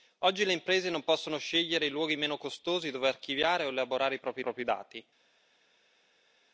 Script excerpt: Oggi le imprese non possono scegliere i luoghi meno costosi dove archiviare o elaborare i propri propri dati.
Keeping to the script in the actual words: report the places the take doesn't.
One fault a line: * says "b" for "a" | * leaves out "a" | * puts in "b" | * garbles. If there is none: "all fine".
all fine